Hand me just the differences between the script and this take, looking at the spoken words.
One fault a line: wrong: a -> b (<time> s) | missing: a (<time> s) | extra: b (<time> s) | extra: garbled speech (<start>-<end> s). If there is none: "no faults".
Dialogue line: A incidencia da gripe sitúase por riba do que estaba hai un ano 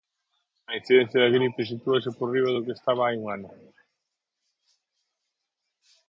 no faults